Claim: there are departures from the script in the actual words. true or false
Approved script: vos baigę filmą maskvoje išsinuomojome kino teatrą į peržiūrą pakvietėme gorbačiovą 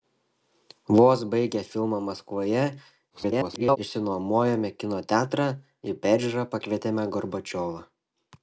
true